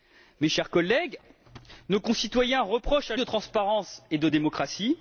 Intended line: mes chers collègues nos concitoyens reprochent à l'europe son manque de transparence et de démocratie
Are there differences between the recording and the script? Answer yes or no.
yes